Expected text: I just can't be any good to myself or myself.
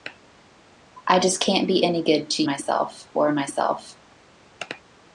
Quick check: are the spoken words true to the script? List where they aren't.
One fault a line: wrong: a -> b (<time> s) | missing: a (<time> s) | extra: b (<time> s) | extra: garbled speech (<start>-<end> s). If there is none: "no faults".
no faults